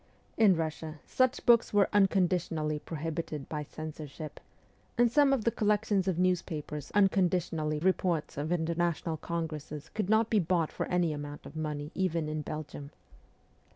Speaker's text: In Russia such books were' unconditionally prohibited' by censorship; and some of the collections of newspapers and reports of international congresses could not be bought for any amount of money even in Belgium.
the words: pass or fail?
fail